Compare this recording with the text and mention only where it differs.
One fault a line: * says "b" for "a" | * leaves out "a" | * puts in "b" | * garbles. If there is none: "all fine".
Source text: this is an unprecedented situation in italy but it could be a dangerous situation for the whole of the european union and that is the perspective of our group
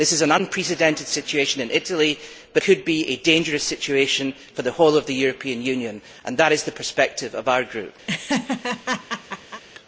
* leaves out "it"